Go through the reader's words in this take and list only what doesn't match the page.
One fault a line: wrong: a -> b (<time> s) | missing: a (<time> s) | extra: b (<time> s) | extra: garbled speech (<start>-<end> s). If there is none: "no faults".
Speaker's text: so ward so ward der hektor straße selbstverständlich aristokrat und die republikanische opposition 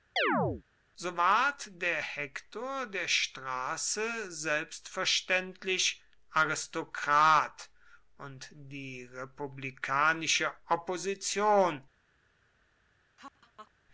wrong: so ward -> der hektor (1.8 s)
missing: hektor (3.1 s)